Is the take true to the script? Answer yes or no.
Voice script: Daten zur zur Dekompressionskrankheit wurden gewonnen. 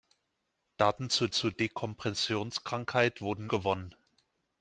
yes